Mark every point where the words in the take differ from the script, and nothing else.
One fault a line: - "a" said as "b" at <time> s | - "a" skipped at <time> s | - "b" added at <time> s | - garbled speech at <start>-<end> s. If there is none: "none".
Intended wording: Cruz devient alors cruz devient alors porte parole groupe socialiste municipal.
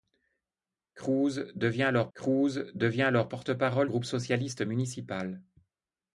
none